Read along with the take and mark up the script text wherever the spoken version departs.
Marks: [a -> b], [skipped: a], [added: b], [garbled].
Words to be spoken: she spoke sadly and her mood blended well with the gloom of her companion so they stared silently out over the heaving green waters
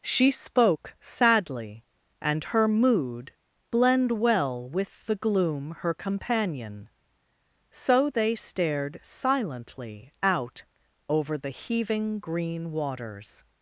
she spoke sadly and her mood [blended -> blend] well with the gloom [skipped: of] her companion so they stared silently out over the heaving green waters